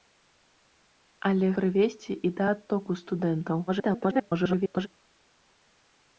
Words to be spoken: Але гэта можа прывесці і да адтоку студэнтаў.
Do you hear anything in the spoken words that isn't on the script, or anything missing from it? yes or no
yes